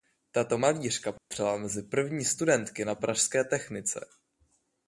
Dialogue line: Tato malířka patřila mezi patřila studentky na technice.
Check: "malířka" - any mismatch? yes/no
no